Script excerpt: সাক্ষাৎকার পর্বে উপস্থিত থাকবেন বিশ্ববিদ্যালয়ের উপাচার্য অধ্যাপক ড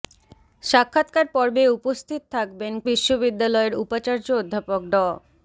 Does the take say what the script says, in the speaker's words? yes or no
yes